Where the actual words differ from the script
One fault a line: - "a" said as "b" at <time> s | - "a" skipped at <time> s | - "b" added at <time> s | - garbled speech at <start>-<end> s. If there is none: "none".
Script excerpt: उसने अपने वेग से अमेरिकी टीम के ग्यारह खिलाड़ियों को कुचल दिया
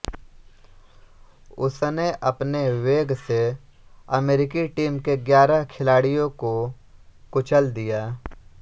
none